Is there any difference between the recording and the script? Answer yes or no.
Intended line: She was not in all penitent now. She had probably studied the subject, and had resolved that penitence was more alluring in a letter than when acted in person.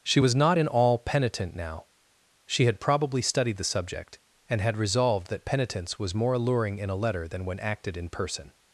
no